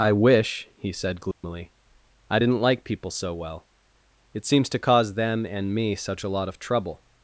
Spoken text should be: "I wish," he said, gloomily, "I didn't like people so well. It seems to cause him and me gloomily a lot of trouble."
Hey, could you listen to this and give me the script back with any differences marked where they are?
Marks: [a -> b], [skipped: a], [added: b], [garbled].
"I wish," he said, gloomily, "I didn't like people so well. It seems to cause [him -> them] and me [gloomily -> such] a lot of trouble."